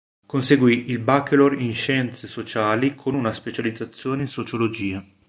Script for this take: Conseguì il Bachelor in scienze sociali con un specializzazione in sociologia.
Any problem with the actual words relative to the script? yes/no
yes